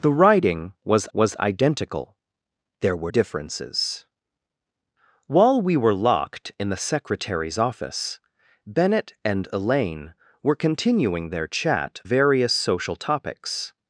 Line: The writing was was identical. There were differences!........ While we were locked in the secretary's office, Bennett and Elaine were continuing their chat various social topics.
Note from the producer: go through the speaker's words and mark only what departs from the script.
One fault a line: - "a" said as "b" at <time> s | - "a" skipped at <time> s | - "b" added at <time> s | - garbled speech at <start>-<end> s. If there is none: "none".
none